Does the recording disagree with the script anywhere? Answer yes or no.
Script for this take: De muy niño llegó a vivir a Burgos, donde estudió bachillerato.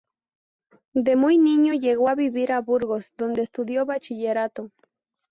no